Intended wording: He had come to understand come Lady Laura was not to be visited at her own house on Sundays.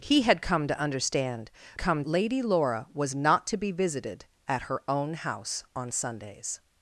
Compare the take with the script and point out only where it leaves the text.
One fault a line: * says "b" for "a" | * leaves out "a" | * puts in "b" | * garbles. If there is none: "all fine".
all fine